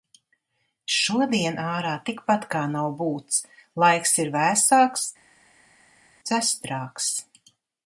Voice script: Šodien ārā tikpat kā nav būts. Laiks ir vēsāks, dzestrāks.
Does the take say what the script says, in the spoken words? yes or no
yes